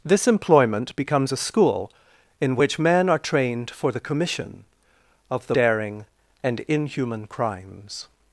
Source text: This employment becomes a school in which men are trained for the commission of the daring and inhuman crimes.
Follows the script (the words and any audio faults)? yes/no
yes